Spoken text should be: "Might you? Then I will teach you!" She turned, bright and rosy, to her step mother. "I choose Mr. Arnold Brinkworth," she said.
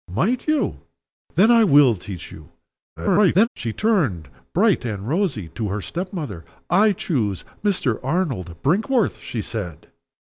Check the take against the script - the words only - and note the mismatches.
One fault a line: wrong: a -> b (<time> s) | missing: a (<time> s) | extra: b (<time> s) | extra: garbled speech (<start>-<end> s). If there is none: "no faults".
extra: garbled speech (3.0-3.5 s)